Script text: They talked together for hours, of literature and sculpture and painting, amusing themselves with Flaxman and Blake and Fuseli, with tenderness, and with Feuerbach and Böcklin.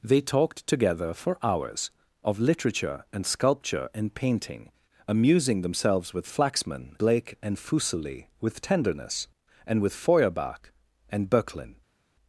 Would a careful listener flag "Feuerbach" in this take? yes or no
no